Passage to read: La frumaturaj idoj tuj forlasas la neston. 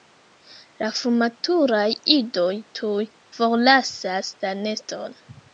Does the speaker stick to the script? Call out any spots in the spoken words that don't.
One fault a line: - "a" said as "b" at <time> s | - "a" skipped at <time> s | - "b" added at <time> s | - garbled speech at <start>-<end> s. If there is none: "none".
none